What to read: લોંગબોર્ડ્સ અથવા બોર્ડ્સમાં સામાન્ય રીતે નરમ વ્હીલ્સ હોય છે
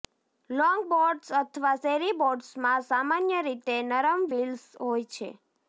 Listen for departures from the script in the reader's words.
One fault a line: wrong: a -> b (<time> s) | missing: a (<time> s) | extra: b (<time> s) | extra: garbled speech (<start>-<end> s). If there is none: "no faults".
extra: શેરી (1.8 s)